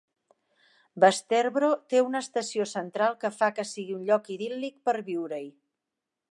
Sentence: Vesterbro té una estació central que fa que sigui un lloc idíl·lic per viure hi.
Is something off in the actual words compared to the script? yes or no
no